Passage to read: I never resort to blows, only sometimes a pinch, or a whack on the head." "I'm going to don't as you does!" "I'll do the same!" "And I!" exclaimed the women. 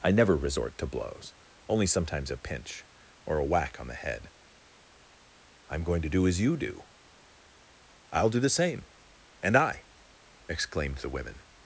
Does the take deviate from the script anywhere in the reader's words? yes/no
yes